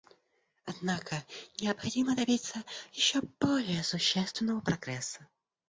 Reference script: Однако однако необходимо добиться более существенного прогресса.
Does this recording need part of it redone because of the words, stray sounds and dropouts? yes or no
yes